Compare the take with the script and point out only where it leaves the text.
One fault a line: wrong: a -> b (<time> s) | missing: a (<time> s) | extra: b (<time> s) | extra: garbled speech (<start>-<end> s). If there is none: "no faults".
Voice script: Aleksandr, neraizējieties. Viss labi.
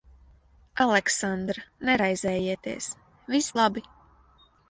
no faults